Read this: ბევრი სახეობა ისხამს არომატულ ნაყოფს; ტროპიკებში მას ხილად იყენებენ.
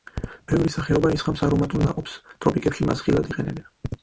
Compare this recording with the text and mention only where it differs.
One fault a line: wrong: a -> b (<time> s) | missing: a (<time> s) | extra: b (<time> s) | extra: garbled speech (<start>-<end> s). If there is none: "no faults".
no faults